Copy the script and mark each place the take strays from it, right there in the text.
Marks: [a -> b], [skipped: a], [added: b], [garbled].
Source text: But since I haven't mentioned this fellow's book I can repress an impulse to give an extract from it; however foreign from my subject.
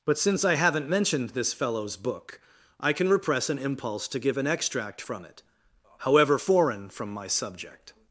But since I haven't mentioned this fellow's book I can repress an impulse to give an extract from it; however foreign from my subject.